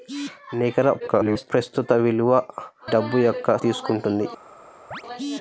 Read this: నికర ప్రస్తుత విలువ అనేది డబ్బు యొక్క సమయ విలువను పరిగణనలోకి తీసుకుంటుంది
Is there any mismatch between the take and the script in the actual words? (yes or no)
yes